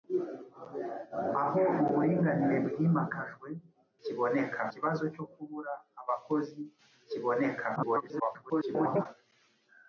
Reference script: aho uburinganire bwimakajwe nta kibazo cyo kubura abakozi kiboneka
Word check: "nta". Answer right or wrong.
wrong